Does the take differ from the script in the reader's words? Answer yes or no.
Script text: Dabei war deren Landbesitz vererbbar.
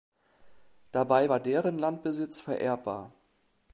no